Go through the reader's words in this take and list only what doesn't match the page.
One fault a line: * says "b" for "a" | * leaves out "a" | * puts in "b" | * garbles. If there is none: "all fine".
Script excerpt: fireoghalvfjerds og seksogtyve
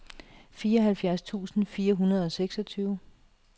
* puts in "tusind fire hundrede"